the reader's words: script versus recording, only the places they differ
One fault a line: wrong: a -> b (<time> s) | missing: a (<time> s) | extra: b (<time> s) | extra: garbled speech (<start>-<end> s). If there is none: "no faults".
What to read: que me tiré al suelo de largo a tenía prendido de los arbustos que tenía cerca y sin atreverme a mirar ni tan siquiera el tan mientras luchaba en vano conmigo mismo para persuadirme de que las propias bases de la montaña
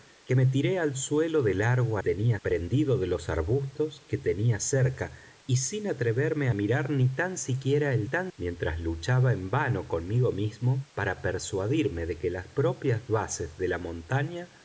no faults